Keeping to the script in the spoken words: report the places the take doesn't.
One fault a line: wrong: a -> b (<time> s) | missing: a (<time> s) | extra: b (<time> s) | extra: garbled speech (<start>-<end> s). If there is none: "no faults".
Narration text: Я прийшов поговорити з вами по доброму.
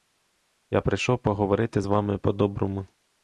no faults